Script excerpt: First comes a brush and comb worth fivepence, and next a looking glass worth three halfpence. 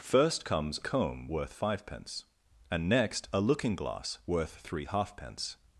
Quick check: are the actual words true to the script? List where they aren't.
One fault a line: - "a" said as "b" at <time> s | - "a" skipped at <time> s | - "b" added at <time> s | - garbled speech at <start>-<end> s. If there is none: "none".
- "a brush and" skipped at 0.8 s